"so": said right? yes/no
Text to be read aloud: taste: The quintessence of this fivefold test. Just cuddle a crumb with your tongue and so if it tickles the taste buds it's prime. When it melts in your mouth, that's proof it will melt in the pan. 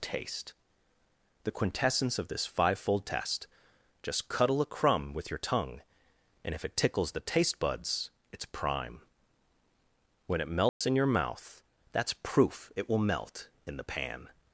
no